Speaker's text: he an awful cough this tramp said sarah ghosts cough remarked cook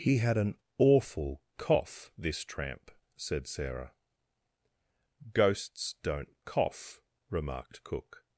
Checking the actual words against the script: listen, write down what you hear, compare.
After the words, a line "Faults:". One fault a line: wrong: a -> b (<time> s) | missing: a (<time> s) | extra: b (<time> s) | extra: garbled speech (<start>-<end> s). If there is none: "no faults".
he had an awful cough this tramp said sarah ghosts don't cough remarked cook
Faults:
extra: had (0.2 s)
extra: don't (6.0 s)